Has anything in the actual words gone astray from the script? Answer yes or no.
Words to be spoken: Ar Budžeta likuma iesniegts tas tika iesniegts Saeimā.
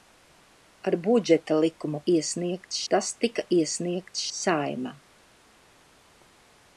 no